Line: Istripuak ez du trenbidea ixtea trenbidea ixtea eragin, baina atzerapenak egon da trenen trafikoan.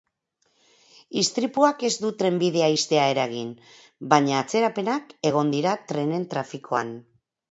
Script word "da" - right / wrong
wrong